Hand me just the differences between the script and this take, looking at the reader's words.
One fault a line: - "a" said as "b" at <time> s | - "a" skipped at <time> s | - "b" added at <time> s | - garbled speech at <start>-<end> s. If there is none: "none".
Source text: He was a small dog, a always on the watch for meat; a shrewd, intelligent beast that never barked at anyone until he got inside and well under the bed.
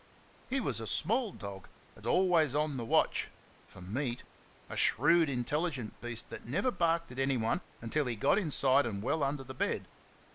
none